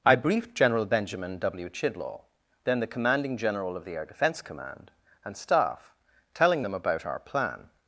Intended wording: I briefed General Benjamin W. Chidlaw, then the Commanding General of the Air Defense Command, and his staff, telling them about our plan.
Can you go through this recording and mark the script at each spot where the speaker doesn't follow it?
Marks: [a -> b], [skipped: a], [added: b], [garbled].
I briefed General Benjamin W. Chidlaw, then the Commanding General of the Air Defense Command, and [skipped: his] staff, telling them about our plan.